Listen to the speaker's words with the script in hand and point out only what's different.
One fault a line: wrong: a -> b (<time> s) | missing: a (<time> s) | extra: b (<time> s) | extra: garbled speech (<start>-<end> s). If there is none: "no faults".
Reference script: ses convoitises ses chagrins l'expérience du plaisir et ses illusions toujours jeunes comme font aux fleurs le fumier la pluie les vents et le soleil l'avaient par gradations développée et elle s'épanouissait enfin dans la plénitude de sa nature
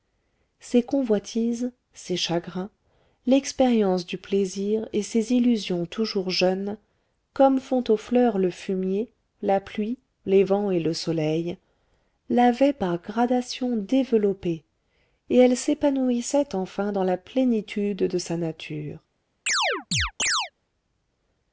no faults